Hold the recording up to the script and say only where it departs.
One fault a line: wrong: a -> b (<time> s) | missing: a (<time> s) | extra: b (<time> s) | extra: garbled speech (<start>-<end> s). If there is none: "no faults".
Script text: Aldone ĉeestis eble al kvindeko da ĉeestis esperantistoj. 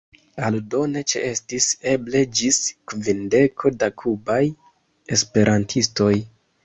wrong: al -> ĝis (2.4 s)
wrong: ĉeestis -> kubaj (4.0 s)